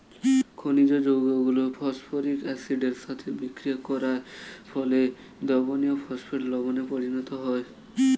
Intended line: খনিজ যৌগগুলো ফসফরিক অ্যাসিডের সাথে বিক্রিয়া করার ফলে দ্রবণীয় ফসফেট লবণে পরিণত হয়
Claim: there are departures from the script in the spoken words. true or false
false